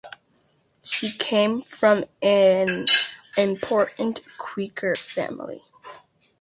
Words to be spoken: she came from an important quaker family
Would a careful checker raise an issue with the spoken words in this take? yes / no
no